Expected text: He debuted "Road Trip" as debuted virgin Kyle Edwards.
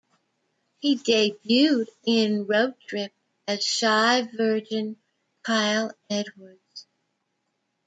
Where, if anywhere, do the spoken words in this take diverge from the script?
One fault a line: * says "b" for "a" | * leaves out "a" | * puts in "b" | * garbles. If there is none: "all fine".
* puts in "in"
* says "shy" for "debuted"